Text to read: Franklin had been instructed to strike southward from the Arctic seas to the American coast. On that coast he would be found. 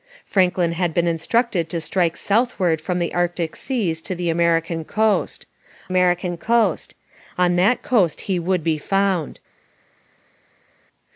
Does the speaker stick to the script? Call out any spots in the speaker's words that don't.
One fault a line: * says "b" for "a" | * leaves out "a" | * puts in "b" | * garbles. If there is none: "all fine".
* puts in "American coast"